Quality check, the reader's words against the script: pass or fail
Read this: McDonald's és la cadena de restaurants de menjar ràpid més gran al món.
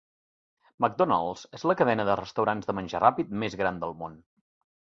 fail